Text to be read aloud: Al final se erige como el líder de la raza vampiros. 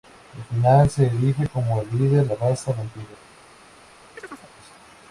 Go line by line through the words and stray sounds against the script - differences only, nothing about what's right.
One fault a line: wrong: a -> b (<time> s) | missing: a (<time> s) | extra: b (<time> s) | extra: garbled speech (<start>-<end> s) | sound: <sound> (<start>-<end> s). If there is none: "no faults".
missing: de (2.3 s)
sound: chirp (4.2-4.5 s)